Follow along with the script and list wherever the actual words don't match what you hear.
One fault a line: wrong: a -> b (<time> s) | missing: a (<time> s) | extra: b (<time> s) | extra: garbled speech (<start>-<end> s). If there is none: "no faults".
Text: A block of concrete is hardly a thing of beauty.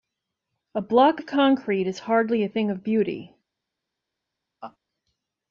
no faults